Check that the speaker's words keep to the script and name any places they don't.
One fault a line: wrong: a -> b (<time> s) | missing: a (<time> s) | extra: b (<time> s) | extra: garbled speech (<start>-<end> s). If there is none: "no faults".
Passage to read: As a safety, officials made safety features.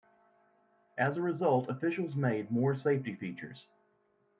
wrong: safety -> result (1.2 s)
extra: more (2.5 s)